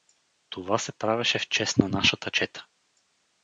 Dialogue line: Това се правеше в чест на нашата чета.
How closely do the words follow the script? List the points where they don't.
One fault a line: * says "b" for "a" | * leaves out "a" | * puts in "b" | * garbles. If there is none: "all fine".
all fine